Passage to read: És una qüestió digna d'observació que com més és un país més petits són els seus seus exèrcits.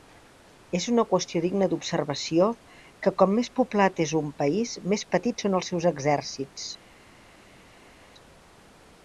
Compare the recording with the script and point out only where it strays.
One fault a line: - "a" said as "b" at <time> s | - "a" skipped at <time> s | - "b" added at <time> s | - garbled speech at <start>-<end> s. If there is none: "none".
- "poblat" added at 3.6 s
- "seus" skipped at 5.9 s